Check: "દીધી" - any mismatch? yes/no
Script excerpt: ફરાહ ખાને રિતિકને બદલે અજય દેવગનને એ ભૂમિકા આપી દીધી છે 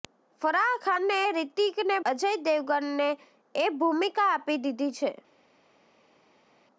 no